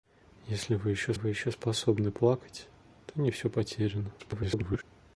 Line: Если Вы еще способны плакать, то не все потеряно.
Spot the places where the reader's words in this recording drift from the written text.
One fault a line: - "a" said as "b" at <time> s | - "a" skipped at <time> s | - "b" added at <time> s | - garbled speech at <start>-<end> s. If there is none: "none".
- "Вы еще" added at 1.1 s
- garbled speech at 4.2-4.8 s